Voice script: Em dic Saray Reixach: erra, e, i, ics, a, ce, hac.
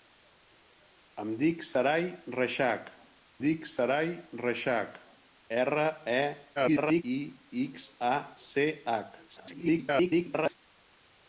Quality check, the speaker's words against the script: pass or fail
fail